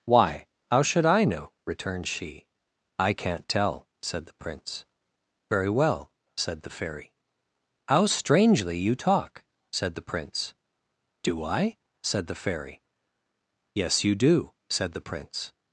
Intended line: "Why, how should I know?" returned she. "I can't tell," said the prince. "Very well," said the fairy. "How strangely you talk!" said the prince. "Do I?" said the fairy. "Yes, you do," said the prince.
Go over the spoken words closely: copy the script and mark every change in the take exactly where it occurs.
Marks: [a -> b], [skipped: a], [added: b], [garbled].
"Why, how should I know?" returned she. "I can't tell," said the prince. "Very well," said the fairy. "How strangely you talk!" said the prince. "Do I?" said the fairy. "Yes, you do," said the prince.